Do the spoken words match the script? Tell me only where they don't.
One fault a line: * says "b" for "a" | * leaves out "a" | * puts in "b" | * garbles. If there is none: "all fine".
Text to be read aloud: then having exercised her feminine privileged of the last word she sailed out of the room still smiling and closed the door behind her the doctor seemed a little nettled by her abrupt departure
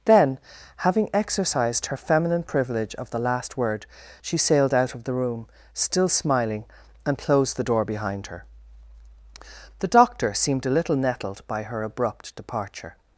* says "privilege" for "privileged"